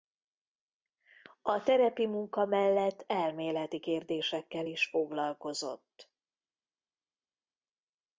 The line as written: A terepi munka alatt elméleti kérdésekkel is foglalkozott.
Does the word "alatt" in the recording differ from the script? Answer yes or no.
yes